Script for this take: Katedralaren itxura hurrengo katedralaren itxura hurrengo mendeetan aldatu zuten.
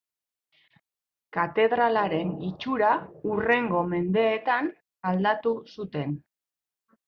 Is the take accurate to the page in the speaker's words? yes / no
no